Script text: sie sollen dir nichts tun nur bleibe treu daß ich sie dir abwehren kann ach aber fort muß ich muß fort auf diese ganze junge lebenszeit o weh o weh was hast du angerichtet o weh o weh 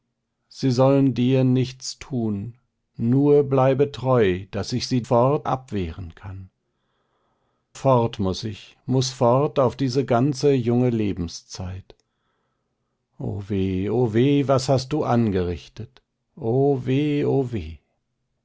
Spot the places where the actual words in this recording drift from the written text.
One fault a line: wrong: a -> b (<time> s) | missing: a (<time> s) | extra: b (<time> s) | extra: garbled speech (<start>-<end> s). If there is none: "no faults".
wrong: dir -> fort (5.0 s)
missing: ach aber (6.5 s)